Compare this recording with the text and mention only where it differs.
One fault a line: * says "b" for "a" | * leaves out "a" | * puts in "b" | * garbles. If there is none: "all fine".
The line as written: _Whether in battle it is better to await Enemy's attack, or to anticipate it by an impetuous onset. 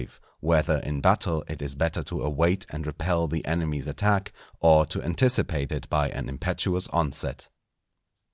* puts in "and repel the"